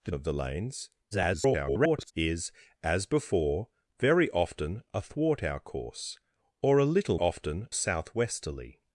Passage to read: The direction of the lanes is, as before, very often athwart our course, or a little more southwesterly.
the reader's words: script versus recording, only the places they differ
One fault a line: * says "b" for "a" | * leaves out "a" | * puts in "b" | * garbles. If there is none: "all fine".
* leaves out "direction"
* garbles
* says "often" for "more"